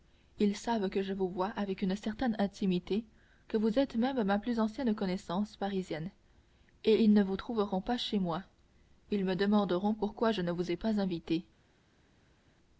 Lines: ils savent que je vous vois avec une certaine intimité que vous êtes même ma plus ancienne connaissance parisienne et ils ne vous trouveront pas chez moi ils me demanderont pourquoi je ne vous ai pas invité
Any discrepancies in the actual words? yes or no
no